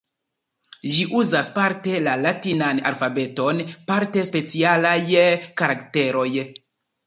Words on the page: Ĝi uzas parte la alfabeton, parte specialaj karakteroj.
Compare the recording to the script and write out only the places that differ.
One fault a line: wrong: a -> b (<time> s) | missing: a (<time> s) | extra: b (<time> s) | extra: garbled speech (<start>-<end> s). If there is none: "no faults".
extra: latinan (2.2 s)